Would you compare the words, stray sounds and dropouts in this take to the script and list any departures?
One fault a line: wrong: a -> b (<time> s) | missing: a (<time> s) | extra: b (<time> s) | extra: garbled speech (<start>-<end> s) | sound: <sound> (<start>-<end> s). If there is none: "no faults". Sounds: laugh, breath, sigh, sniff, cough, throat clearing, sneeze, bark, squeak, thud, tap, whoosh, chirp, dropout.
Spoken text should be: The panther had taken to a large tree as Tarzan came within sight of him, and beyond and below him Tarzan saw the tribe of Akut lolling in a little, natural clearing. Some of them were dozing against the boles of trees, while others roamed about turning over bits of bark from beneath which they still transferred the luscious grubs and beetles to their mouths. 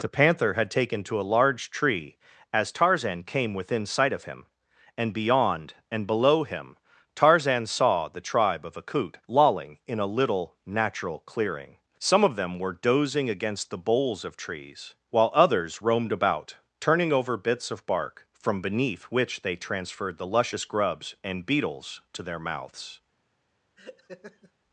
missing: still (19.6 s)
sound: laugh (23.8-24.5 s)